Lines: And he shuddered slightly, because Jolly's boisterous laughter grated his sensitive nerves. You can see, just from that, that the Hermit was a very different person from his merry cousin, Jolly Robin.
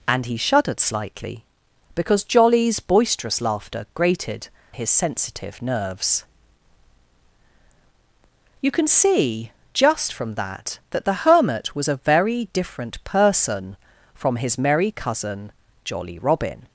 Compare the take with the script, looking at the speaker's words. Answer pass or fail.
pass